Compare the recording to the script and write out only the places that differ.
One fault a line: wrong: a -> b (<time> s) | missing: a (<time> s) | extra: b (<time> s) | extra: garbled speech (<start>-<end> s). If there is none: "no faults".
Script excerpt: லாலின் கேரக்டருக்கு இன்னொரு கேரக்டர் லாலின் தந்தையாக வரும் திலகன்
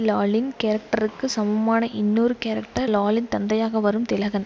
extra: சமமான (1.2 s)